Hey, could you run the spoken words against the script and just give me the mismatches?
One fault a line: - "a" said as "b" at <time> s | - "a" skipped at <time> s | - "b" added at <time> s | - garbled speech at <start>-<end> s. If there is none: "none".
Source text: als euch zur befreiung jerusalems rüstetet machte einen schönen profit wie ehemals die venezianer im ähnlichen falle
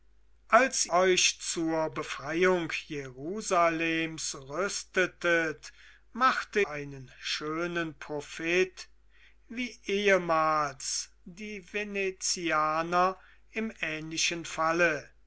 none